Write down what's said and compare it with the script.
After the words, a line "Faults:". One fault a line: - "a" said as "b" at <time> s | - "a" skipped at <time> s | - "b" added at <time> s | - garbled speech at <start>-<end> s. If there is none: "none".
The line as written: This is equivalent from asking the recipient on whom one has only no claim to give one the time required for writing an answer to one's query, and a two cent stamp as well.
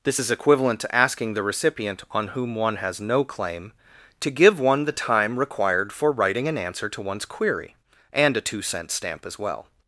This is equivalent to asking the recipient on whom one has no claim to give one the time required for writing an answer to one's query, and a two cent stamp as well.
Faults:
- "from" said as "to" at 0.8 s
- "only" skipped at 3.0 s